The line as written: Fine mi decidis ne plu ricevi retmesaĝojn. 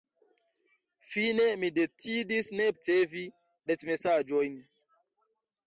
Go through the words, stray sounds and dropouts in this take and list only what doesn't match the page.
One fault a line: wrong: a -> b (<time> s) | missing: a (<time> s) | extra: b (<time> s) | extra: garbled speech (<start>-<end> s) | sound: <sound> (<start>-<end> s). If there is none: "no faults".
missing: plu (2.7 s)